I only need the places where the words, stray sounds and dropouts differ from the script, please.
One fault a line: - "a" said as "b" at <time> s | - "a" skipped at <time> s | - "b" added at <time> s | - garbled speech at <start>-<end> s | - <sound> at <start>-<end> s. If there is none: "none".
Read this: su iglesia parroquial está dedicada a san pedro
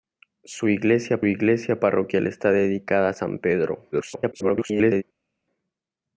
- "iglesia" added at 1.2 s
- garbled speech at 3.9-5.0 s